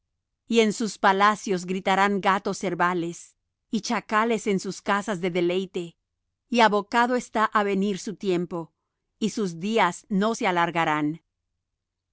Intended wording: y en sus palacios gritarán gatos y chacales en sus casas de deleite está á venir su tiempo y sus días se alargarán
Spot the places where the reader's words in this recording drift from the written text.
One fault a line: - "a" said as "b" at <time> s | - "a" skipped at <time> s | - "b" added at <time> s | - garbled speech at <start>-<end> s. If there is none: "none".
- "cervales" added at 2.6 s
- "y abocado" added at 6.5 s
- "no" added at 10.1 s